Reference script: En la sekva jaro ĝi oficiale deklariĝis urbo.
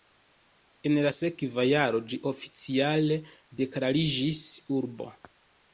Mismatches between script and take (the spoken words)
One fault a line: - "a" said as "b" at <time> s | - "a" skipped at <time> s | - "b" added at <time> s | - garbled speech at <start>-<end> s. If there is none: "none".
none